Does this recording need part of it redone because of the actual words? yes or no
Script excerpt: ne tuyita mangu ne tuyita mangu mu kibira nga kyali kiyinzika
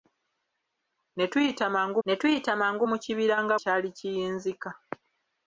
no